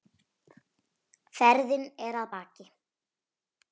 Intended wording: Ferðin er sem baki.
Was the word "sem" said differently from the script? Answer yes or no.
yes